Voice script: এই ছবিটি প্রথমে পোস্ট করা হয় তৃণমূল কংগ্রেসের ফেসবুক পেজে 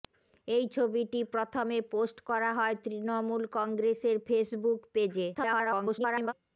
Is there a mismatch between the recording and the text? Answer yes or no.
yes